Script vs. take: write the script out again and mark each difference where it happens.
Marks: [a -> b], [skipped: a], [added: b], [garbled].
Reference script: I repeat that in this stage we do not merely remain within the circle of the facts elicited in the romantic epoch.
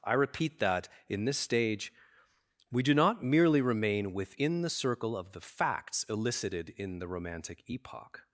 I repeat that in this stage we do not merely remain within the circle of the facts elicited in the romantic epoch.